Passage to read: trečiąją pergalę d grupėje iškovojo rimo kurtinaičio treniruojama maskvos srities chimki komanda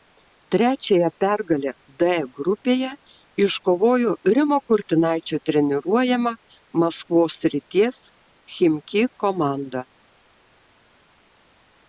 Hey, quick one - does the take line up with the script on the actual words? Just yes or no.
yes